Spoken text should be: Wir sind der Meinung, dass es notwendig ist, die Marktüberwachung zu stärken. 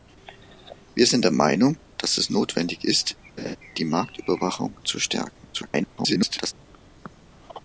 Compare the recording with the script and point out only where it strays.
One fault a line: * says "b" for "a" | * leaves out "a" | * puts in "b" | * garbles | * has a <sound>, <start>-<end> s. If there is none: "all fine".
* has a laugh, 3.4-3.6 s
* garbles